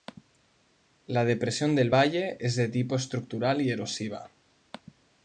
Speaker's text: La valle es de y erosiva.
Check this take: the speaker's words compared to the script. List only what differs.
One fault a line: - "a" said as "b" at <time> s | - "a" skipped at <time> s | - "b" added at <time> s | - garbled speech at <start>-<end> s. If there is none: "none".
- "depresión del" added at 1.2 s
- "tipo estructural" added at 2.7 s